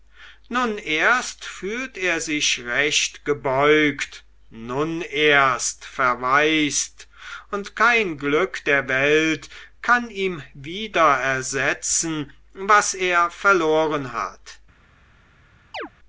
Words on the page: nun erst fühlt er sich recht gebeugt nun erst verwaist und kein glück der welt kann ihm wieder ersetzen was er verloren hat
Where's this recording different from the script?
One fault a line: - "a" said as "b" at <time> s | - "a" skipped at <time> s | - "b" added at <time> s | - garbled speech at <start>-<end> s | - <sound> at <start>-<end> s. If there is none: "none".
- chirp at 15.7-15.9 s